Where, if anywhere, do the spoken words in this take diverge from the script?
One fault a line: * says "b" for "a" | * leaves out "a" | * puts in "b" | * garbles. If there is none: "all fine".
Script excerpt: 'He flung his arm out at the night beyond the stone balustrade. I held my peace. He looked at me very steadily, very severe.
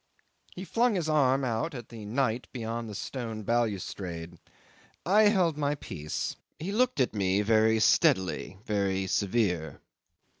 all fine